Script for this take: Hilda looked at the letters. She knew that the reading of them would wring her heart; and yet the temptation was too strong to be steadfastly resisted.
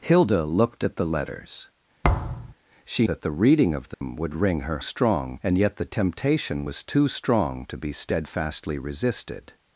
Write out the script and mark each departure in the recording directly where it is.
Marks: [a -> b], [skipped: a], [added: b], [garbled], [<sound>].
Hilda looked at the letters. [thud] She [skipped: knew] that the reading of them [dropout] would wring her [heart; -> strong] and yet the temptation was too strong to be steadfastly resisted.